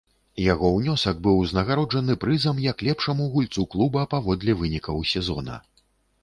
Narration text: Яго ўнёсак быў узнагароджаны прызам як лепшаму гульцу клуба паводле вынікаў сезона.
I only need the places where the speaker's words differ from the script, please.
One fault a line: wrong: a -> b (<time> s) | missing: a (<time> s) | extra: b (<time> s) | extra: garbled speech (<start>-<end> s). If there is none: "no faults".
no faults